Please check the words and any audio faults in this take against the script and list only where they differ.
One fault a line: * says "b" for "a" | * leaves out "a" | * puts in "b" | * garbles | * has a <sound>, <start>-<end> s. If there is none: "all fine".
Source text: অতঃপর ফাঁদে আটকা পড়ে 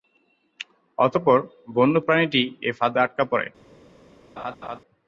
* puts in "বন্য প্রাণীটি এ"
* has a laugh, 4.4-4.8 s